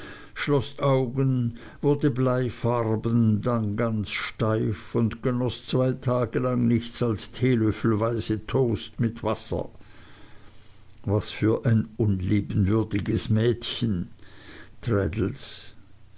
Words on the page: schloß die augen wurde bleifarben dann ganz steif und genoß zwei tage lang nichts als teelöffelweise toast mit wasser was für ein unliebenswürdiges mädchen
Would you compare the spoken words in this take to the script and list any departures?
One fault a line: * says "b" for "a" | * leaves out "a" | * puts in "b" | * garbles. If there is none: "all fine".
* leaves out "die"